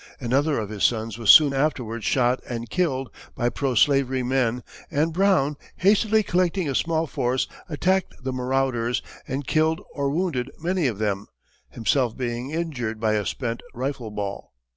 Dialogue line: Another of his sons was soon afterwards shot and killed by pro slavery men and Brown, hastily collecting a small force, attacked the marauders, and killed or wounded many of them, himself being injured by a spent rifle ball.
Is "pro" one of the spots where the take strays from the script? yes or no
no